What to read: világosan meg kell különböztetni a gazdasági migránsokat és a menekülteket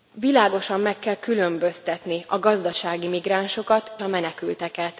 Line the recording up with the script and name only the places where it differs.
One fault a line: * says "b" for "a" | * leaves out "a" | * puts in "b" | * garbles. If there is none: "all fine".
* leaves out "és"